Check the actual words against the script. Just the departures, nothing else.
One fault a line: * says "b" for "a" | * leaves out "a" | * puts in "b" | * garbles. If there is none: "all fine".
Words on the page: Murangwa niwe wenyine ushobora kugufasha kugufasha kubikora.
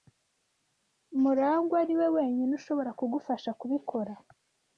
* leaves out "kugufasha"